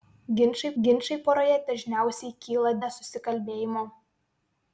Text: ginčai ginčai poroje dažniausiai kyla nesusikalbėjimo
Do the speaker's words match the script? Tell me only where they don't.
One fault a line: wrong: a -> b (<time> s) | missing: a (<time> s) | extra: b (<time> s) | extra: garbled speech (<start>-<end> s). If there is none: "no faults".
no faults